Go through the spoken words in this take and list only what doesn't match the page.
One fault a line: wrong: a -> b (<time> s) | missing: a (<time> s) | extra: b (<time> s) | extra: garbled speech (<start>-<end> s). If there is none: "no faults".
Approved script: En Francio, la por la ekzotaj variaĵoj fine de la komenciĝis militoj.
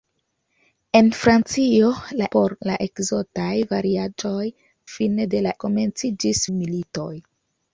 no faults